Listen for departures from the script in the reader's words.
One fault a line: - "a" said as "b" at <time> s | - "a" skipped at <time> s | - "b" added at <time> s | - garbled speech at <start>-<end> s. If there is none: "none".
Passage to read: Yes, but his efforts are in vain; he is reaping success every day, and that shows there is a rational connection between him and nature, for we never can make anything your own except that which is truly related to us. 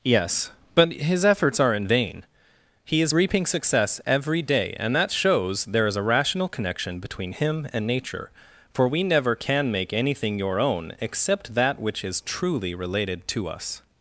none